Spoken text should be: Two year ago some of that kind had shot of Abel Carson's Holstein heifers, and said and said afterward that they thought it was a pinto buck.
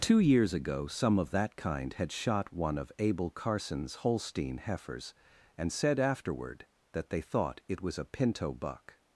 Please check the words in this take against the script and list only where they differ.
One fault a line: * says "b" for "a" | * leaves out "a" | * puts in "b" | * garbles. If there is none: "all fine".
* says "years" for "year"
* puts in "one"
* leaves out "and said"